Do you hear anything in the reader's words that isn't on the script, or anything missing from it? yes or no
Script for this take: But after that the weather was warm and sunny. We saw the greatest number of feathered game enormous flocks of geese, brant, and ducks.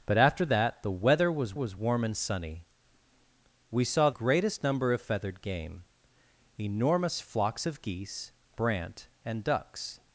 yes